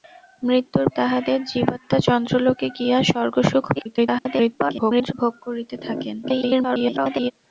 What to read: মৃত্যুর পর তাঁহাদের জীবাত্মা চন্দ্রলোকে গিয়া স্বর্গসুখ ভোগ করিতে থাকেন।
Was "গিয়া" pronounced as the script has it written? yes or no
yes